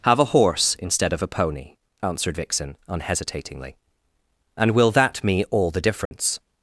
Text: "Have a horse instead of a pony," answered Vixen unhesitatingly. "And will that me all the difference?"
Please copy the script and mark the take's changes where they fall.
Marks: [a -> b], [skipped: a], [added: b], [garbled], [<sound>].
"Have a horse instead of a pony," answered Vixen unhesitatingly. "And will that me all the difference?" [dropout]